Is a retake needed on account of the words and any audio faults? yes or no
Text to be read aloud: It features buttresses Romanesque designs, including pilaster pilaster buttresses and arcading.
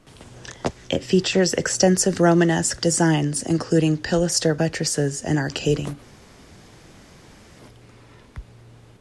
yes